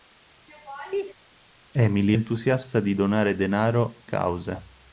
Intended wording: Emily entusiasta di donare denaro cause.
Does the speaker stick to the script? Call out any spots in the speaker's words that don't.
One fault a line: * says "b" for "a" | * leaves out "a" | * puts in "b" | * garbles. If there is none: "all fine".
all fine